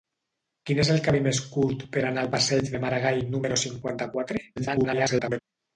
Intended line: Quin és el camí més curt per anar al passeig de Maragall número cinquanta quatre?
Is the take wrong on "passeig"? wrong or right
right